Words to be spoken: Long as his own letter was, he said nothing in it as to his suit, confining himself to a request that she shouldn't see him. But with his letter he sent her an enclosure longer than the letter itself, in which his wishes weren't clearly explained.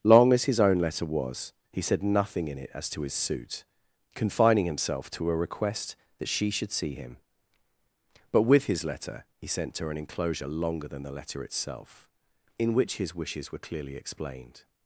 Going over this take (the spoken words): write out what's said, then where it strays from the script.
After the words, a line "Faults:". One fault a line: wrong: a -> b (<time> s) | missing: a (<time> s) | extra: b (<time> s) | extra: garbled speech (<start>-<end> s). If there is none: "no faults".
Long as his own letter was, he said nothing in it as to his suit, confining himself to a request that she should see him. But with his letter he sent her an enclosure longer than the letter itself, in which his wishes were clearly explained.
Faults:
wrong: shouldn't -> should (6.5 s)
wrong: weren't -> were (13.5 s)